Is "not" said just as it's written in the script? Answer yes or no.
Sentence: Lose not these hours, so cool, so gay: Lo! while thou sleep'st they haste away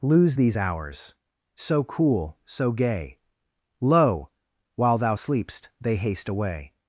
no